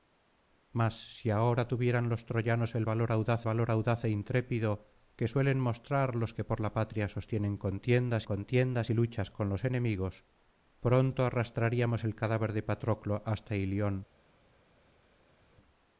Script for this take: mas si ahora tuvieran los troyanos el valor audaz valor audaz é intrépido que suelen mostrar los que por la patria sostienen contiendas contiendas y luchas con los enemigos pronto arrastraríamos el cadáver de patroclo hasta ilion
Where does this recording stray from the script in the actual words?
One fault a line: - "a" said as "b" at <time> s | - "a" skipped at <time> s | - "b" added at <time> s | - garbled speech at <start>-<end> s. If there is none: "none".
none